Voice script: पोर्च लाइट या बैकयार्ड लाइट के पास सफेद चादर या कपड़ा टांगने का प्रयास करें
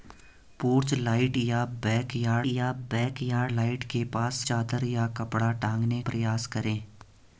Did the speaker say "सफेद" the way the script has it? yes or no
no